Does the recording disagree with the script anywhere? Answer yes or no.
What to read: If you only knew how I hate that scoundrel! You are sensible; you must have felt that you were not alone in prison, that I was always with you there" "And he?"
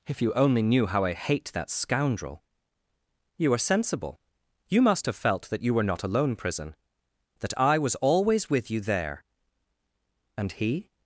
yes